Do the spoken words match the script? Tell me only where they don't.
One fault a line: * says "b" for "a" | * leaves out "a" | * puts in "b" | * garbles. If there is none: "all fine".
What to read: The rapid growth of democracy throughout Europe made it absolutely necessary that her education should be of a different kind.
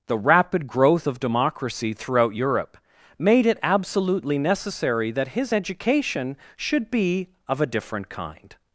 * says "his" for "her"